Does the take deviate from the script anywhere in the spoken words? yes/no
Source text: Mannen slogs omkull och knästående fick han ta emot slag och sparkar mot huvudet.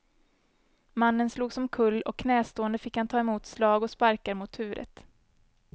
no